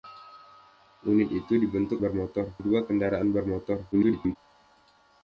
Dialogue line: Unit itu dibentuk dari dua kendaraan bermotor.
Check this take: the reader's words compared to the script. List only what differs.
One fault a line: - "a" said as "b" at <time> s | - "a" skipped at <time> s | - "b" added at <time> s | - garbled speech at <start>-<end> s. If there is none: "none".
- "dari" said as "bermotor" at 2.0 s
- garbled speech at 3.9-4.4 s